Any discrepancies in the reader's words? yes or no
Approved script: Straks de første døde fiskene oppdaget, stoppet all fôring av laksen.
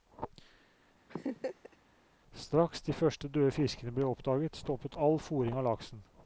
yes